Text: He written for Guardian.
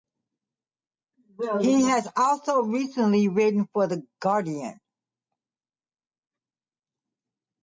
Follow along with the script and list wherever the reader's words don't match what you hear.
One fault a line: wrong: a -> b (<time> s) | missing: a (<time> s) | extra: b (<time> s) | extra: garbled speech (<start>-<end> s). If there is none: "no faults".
extra: has also recently (1.8 s)
extra: The (3.9 s)